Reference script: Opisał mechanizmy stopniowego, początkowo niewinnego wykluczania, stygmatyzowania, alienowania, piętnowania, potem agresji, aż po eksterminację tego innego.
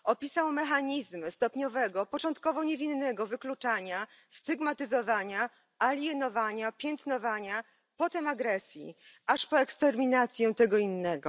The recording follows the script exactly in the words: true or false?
true